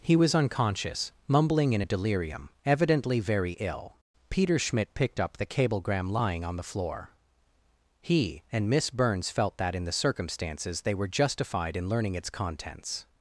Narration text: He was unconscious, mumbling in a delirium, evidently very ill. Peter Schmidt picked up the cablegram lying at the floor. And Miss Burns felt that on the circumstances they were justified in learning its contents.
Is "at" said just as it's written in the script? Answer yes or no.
no